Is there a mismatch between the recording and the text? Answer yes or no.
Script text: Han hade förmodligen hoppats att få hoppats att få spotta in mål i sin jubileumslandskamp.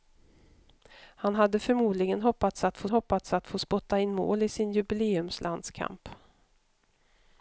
no